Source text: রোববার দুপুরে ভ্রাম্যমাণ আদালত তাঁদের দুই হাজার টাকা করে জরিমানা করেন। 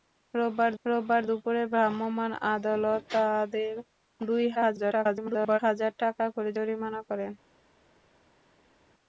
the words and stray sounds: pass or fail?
fail